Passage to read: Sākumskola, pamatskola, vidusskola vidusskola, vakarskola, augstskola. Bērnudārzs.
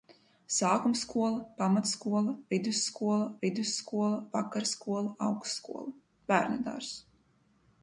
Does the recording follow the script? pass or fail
pass